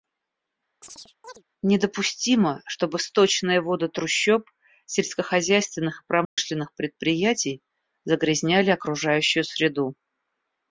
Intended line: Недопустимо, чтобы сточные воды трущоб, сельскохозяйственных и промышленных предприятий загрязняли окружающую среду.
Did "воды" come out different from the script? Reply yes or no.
no